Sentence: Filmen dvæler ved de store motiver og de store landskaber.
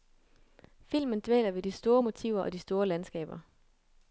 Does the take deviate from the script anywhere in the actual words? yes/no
no